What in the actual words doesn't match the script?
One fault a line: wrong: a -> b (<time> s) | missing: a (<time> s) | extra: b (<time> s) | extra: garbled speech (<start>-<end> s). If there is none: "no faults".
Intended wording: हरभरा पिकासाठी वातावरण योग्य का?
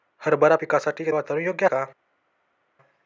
no faults